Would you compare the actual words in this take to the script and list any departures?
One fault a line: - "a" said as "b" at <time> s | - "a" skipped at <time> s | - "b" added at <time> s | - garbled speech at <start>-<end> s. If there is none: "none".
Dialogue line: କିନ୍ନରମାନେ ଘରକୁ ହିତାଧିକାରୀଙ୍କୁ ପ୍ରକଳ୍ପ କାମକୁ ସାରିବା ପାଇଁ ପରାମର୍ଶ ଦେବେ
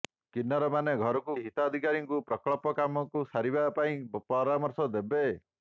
none